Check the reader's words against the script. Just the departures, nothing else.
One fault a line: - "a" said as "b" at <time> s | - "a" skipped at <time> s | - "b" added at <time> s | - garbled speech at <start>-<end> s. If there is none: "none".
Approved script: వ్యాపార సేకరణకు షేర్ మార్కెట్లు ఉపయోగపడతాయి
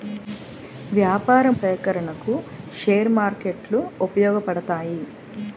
none